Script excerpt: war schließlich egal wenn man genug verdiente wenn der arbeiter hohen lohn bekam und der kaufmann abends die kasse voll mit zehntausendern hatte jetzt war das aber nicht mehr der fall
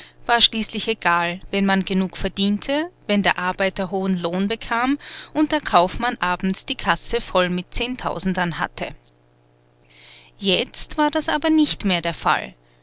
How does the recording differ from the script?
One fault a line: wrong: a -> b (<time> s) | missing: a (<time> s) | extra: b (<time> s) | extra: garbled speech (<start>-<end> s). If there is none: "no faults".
no faults